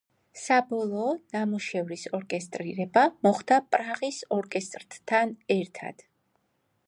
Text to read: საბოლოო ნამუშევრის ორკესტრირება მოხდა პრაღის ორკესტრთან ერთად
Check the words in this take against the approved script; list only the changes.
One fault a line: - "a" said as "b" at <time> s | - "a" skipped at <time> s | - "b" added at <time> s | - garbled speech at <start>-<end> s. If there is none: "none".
none